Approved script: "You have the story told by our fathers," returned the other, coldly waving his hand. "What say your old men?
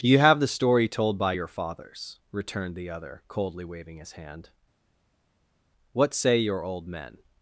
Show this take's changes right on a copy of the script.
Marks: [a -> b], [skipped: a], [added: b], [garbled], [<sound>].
"You have the story told by [our -> your] fathers," returned the other, coldly waving his hand. "What say your old men?